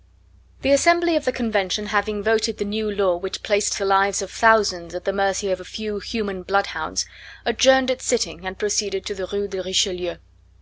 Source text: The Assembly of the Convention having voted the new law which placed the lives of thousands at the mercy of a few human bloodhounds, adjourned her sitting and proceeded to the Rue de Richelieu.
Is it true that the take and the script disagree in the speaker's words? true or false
true